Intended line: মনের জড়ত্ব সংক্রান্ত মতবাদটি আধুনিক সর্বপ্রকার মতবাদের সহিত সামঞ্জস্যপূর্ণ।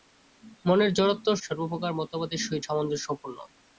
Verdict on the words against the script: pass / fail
fail